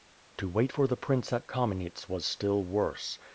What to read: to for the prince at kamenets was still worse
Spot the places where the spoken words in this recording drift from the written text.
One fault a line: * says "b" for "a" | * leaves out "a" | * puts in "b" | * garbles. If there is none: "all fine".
* puts in "wait"